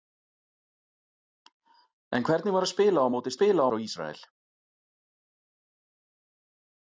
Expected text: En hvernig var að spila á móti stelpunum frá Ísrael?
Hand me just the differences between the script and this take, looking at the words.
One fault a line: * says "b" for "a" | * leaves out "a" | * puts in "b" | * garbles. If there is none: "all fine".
* says "spila" for "stelpunum"